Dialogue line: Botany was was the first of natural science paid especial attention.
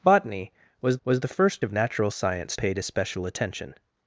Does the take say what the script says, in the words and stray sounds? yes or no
yes